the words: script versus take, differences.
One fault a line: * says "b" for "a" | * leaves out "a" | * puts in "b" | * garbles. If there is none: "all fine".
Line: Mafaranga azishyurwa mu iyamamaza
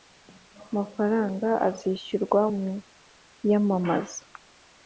all fine